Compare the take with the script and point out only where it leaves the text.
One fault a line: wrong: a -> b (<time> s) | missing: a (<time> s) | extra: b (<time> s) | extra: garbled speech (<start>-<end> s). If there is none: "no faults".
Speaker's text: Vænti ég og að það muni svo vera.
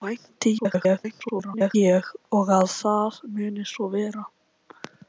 extra: garbled speech (0.6-1.8 s)